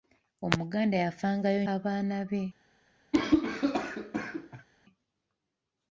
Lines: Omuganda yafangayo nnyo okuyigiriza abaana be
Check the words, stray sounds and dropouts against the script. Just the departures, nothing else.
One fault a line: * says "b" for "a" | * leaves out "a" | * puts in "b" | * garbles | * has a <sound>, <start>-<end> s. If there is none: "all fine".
* leaves out "nnyo okuyigiriza"
* has a cough, 3.1-4.7 s